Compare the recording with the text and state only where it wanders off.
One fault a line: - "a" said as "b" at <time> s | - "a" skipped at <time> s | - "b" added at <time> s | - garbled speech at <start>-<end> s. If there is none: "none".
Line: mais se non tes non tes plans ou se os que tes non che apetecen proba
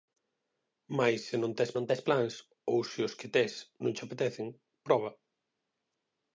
none